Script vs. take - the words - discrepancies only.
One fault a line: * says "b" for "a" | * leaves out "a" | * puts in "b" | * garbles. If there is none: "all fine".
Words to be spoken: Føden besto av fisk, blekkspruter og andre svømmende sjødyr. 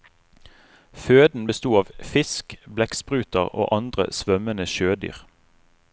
all fine